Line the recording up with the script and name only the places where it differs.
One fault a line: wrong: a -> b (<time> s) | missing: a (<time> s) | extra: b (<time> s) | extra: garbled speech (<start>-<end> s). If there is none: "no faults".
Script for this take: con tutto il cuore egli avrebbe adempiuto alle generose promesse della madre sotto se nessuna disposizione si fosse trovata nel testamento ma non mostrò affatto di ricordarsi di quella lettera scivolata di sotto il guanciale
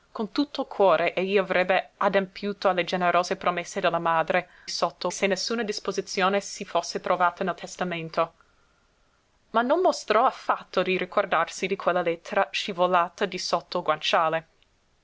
no faults